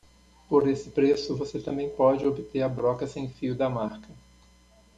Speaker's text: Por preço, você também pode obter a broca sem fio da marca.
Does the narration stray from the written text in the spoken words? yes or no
yes